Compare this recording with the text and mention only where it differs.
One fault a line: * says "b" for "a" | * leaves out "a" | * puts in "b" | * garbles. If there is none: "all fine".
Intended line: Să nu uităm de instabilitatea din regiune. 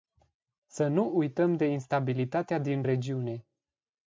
all fine